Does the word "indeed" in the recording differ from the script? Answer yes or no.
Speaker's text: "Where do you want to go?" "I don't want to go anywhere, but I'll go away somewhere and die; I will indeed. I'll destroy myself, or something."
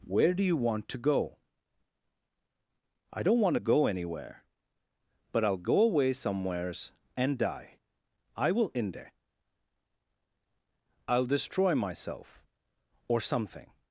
yes